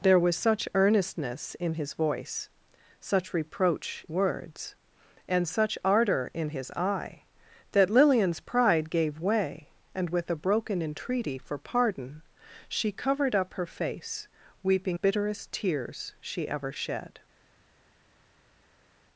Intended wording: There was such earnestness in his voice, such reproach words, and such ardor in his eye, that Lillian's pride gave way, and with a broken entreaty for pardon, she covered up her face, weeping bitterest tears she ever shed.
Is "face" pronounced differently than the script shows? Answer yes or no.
no